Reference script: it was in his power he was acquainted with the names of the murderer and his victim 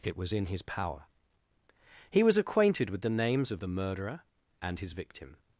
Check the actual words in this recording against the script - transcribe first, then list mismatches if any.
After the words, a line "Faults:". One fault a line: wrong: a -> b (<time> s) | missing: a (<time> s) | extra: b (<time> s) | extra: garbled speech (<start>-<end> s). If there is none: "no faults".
it was in his power he was acquainted with the names of the murderer and his victim
Faults:
no faults